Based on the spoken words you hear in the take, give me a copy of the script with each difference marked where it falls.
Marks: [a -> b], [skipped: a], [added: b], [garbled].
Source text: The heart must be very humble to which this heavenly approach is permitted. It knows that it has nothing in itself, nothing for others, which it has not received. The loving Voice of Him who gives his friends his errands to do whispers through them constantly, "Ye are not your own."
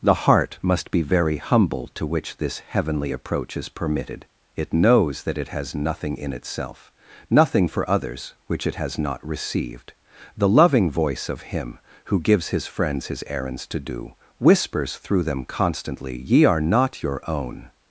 The heart must be very humble to which this heavenly approach is permitted. It knows that it has nothing in itself, nothing for others, which it has not received. The loving Voice of Him who gives his friends his errands to do whispers through them constantly, "Ye are not your own."